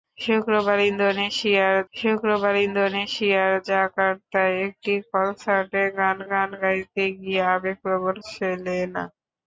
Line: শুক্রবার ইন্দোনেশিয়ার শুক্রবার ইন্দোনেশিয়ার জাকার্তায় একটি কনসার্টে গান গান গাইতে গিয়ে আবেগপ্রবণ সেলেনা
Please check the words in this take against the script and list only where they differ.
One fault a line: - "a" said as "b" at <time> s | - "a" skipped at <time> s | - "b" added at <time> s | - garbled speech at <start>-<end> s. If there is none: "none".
none